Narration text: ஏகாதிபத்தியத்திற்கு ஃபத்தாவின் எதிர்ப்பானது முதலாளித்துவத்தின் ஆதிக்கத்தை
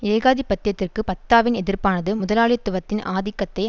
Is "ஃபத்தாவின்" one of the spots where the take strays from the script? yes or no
no